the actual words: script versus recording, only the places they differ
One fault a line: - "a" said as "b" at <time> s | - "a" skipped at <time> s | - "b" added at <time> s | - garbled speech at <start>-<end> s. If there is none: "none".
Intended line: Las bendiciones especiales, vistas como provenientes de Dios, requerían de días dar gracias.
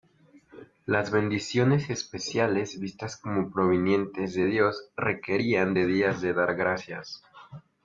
- "de" added at 6.2 s